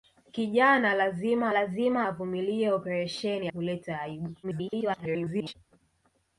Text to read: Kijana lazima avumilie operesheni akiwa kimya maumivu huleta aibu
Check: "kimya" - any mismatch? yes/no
yes